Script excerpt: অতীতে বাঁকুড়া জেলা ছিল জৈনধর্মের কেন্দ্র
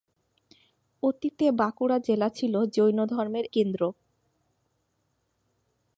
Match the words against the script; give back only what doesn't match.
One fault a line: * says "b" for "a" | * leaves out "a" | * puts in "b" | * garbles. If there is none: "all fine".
all fine